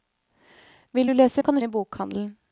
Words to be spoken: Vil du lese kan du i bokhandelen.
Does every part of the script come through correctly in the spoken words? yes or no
yes